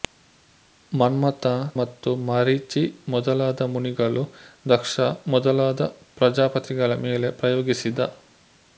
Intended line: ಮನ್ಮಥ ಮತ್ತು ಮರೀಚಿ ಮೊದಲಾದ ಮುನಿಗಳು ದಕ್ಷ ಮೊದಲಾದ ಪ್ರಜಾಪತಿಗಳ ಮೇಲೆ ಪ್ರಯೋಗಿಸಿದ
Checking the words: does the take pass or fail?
pass